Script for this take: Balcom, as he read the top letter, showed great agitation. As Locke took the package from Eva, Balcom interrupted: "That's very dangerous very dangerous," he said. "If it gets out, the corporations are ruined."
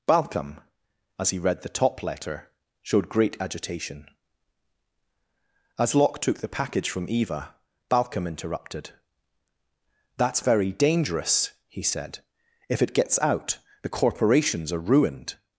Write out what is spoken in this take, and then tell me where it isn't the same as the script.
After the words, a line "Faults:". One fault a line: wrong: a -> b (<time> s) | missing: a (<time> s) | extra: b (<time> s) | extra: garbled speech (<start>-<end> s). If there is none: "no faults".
Balcom, as he read the top letter, showed great agitation. As Locke took the package from Eva, Balcom interrupted: "That's very dangerous," he said. "If it gets out, the corporations are ruined."
Faults:
missing: very dangerous (11.5 s)